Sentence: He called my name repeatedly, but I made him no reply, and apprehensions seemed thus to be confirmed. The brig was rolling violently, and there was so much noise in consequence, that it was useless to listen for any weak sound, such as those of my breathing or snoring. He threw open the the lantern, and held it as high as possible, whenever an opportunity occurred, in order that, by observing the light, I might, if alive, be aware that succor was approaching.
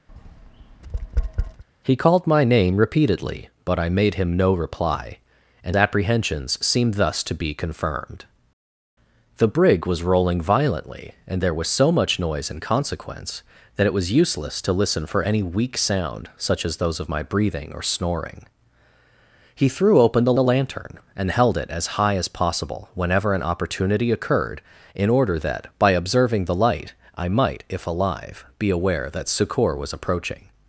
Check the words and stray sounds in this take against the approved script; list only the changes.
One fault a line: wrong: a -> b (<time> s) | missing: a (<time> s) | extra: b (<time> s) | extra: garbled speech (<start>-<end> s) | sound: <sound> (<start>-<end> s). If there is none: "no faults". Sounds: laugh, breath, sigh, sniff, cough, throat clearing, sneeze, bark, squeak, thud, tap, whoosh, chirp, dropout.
sound: tap (0.1-1.6 s)